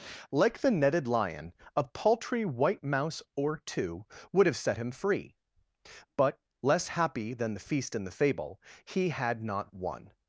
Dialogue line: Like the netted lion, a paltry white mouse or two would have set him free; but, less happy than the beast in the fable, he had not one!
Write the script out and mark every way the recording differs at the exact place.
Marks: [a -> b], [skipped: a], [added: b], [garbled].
Like the netted lion, a paltry white mouse or two would have set him free; but, less happy than the [beast -> feast] in the fable, he had not one!